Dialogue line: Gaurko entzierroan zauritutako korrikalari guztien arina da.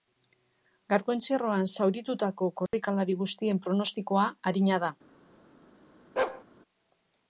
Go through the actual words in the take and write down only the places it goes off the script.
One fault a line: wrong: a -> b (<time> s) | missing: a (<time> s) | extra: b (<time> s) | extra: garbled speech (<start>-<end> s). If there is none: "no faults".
extra: pronostikoa (3.7 s)